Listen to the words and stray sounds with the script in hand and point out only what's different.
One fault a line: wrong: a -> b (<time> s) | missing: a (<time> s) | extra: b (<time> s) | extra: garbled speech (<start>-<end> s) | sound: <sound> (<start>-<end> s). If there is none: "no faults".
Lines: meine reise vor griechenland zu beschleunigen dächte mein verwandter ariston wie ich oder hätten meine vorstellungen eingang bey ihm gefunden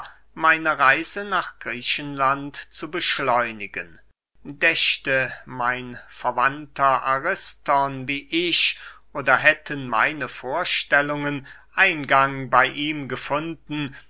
wrong: vor -> nach (1.2 s)